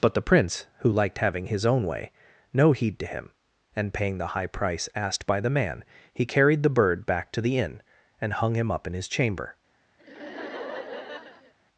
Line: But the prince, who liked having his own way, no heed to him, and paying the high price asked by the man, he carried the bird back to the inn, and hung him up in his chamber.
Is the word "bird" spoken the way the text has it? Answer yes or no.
yes